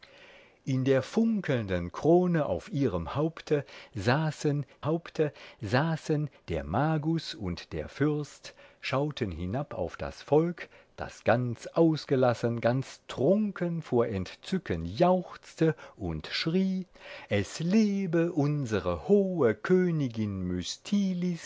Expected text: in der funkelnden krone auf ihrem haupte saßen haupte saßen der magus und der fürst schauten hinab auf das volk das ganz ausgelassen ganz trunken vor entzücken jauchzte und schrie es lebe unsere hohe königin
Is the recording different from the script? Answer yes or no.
no